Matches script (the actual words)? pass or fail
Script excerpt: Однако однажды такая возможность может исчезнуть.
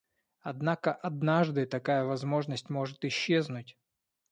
pass